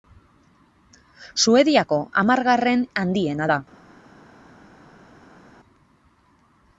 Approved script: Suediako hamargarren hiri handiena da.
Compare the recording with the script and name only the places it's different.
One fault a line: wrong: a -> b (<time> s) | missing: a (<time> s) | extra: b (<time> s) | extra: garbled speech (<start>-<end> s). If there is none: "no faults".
missing: hiri (2.9 s)